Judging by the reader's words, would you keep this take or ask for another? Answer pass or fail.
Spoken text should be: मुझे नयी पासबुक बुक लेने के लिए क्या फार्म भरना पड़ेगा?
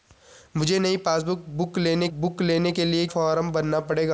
fail